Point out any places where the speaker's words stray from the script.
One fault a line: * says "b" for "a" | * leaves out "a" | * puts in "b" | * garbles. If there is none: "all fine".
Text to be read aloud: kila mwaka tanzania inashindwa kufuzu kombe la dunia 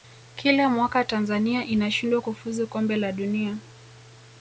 all fine